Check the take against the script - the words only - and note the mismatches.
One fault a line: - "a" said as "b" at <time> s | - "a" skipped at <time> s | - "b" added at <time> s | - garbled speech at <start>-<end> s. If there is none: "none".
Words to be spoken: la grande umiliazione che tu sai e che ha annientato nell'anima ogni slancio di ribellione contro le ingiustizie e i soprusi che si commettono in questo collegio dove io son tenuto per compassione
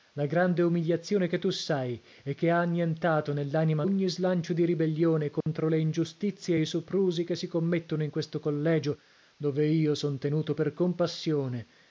none